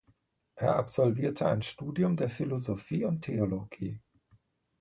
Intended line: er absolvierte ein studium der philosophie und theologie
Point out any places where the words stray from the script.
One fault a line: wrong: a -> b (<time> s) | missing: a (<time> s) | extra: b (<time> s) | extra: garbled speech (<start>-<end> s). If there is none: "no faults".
no faults